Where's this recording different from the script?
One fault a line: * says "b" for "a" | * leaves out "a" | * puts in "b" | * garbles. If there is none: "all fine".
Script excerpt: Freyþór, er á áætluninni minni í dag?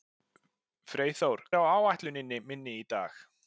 all fine